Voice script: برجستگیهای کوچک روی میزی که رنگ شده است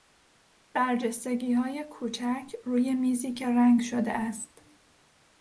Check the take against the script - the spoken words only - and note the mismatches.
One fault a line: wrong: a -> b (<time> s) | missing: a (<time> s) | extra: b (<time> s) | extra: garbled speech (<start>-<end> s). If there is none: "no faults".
no faults